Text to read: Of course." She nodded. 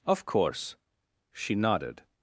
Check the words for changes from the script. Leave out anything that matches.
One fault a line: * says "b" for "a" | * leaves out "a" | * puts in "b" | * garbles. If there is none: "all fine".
all fine